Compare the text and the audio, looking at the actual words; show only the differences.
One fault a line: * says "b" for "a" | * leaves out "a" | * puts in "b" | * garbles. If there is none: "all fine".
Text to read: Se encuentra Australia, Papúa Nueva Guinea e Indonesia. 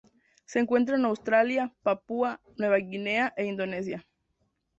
* puts in "en"